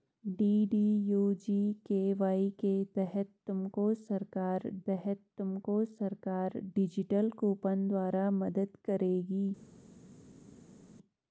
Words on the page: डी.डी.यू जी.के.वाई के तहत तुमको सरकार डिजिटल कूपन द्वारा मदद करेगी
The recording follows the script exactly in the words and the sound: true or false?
false